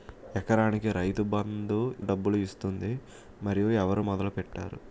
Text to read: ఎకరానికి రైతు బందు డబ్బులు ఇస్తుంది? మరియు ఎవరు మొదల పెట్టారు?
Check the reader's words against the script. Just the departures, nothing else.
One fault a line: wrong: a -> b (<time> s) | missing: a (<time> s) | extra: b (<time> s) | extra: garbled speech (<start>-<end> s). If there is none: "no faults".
no faults